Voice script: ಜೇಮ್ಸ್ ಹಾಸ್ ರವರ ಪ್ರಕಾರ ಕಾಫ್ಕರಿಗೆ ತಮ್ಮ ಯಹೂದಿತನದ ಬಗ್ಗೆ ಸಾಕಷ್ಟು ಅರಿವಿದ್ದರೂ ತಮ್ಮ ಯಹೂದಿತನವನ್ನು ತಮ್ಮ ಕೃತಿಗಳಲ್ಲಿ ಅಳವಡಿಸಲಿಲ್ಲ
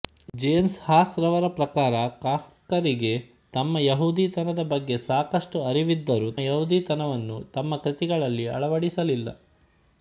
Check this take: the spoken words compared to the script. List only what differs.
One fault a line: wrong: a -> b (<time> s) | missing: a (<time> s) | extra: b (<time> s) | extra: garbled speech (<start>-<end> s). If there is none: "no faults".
missing: ತಮ್ಮ (6.3 s)